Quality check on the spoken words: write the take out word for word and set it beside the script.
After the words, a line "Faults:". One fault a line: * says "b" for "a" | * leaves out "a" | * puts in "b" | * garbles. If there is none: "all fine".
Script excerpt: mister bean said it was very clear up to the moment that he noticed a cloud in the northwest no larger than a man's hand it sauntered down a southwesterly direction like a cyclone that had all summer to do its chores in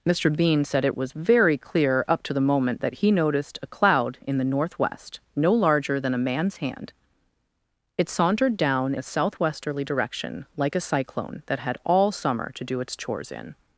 mister bean said it was very clear up to the moment that he noticed a cloud in the northwest no larger than a man's hand it sauntered down a southwesterly direction like a cyclone that had all summer to do its chores in
Faults:
all fine